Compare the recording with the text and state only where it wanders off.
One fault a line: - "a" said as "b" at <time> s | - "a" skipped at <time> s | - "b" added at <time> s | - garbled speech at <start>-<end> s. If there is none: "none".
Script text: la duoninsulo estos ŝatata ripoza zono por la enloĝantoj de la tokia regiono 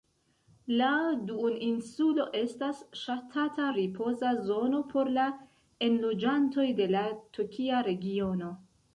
- "estos" said as "estas" at 2.4 s